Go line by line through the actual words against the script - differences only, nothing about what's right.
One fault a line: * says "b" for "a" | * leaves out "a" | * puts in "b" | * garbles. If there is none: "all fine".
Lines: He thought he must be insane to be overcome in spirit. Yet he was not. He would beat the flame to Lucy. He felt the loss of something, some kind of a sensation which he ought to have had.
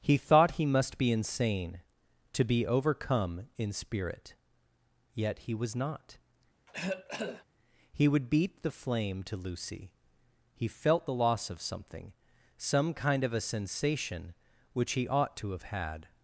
all fine